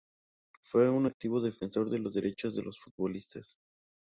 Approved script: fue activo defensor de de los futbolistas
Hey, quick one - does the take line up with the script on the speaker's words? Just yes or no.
no